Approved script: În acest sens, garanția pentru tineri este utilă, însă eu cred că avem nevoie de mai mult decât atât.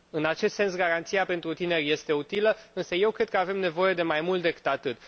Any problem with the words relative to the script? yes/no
no